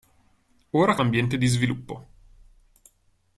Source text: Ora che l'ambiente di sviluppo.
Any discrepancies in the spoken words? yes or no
no